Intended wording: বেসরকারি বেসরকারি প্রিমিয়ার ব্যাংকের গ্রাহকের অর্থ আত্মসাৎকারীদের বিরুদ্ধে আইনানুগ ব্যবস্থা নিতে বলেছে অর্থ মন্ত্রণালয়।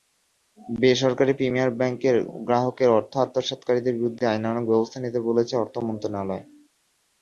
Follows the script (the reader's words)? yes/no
no